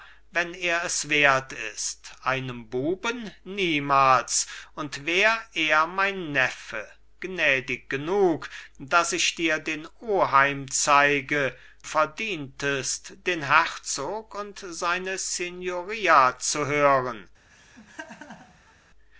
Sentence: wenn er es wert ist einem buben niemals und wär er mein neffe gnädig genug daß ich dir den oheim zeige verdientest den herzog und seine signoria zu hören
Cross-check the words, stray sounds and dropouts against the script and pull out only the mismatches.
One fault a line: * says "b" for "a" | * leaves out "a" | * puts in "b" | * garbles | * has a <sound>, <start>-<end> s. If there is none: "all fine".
* has a laugh, 17.5-18.7 s